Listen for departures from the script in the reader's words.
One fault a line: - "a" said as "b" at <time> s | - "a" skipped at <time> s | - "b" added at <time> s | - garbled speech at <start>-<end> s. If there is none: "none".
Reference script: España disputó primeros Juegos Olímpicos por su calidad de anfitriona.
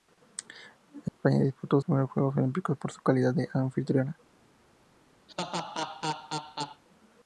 none